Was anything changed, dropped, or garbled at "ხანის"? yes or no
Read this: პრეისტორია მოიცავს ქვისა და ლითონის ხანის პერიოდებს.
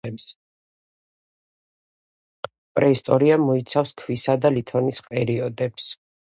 yes